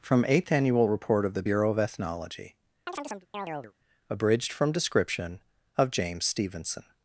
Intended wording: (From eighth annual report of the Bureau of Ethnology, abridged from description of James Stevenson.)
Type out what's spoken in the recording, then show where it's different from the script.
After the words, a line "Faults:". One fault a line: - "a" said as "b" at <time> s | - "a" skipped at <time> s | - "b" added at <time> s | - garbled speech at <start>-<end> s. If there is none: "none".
(From eighth annual report of the Bureau of Ethnology, abridged from description of James Stevenson.)
Faults:
none